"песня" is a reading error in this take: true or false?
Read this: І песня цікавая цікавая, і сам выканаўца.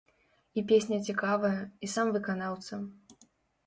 false